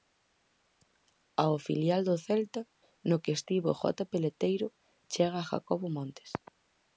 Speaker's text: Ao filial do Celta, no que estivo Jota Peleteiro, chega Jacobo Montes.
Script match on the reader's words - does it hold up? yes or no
yes